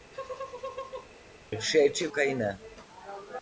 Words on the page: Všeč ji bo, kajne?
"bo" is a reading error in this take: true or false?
true